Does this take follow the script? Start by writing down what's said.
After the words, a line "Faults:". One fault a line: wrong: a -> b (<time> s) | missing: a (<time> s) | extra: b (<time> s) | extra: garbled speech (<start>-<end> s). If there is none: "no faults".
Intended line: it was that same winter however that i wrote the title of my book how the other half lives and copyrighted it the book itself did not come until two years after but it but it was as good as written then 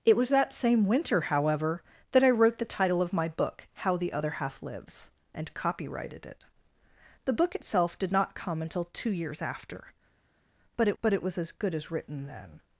it was that same winter however that i wrote the title of my book how the other half lives and copyrighted it the book itself did not come until two years after but it but it was as good as written then
Faults:
no faults